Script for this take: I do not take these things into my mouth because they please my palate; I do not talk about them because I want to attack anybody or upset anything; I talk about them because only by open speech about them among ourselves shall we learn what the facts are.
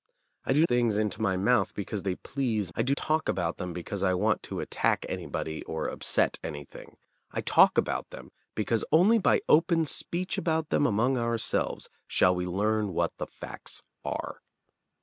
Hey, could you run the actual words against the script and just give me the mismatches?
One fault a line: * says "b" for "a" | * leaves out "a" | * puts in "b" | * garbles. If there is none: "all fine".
* leaves out "not take these"
* leaves out "my palate"
* leaves out "not"